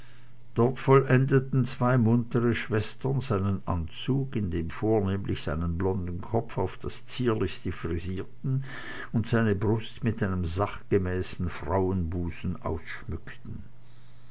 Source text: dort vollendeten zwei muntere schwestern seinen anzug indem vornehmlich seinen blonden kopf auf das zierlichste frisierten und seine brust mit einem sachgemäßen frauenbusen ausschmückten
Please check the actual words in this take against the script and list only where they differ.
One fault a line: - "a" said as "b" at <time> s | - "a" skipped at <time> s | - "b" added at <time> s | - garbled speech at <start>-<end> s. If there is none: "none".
none